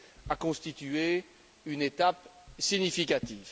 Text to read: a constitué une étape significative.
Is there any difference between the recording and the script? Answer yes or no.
no